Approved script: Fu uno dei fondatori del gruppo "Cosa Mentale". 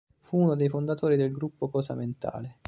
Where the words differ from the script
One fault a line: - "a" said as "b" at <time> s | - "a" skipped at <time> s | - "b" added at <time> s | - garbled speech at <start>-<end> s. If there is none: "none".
none